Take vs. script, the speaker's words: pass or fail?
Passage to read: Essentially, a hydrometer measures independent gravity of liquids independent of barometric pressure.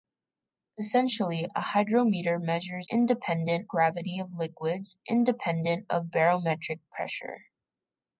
pass